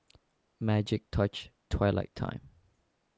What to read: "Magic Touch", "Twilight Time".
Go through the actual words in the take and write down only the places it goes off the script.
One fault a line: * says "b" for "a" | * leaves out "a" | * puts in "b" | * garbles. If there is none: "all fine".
all fine